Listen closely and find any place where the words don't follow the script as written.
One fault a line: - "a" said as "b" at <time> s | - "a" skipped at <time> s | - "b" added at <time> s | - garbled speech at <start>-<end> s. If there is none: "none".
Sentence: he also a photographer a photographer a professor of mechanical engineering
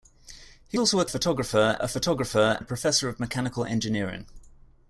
none